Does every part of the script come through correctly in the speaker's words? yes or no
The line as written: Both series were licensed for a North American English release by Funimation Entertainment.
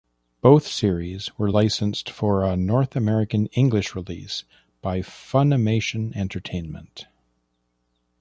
yes